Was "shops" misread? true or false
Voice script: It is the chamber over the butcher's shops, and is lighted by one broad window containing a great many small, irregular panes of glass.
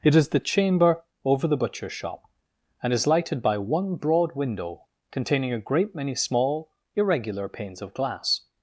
true